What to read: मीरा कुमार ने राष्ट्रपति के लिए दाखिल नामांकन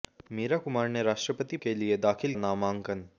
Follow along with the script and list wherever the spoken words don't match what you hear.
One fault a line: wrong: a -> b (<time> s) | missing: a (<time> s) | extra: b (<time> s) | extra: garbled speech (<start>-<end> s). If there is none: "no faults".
no faults